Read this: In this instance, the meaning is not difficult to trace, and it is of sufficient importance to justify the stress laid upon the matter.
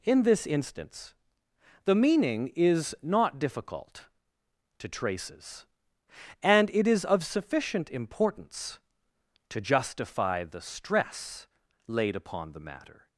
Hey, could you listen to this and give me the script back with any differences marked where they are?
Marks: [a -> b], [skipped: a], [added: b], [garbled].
In this instance, the meaning is not difficult to [trace, -> traces] and it is of sufficient importance to justify the stress laid upon the matter.